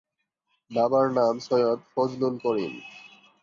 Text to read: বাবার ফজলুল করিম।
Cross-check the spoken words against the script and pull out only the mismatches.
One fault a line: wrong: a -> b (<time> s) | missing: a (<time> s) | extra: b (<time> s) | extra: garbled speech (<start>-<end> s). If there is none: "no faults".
extra: নাম সৈয়দ (1.1 s)